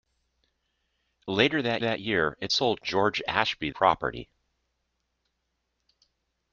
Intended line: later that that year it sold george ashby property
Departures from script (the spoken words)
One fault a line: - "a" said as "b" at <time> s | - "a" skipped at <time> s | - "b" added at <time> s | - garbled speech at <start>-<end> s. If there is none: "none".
none